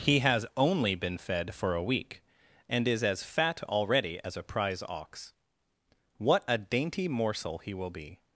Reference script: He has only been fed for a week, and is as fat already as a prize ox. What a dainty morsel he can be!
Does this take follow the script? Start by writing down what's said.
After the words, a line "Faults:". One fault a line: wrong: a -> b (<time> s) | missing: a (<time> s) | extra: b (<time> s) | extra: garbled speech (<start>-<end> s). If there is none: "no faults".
He has only been fed for a week, and is as fat already as a prize ox. What a dainty morsel he will be!
Faults:
wrong: can -> will (7.8 s)